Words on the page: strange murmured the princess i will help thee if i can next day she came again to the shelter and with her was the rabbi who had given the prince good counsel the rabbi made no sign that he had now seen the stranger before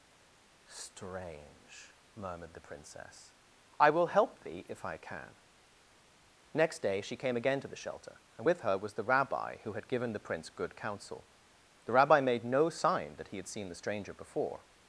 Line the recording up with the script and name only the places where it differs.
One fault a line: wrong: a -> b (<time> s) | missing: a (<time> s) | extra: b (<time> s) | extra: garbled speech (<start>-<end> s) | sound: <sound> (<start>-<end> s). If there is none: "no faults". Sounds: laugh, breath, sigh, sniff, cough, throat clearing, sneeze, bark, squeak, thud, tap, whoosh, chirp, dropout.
missing: now (13.5 s)